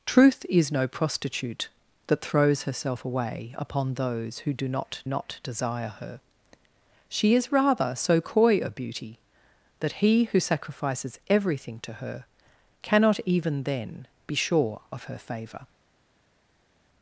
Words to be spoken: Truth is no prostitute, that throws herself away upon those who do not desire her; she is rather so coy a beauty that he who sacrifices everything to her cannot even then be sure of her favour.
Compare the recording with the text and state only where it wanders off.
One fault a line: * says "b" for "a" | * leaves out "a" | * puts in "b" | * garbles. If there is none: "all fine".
* puts in "not"